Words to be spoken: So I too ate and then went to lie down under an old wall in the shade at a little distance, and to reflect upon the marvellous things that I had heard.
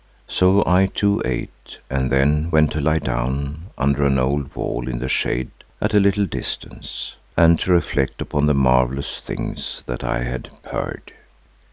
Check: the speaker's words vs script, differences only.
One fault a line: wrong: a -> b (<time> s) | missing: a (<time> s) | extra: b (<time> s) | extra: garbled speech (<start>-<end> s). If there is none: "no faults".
no faults